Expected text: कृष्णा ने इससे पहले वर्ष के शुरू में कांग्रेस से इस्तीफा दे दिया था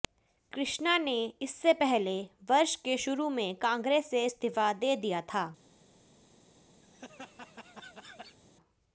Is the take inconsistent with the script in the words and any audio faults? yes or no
yes